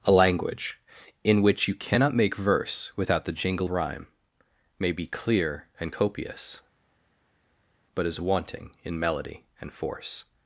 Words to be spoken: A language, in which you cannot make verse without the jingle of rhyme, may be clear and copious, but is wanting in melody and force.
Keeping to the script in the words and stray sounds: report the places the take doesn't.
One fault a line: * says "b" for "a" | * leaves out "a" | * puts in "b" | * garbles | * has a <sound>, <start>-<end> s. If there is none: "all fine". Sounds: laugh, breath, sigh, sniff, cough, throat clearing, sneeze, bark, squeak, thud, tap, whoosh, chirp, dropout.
* leaves out "of"